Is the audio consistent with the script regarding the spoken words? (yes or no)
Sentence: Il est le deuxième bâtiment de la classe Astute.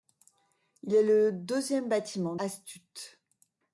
no